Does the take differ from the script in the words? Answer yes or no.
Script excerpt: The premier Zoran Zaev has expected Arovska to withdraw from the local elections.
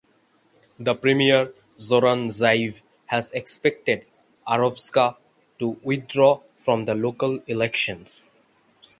no